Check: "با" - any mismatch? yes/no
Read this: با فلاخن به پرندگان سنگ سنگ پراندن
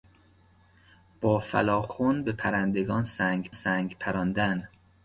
no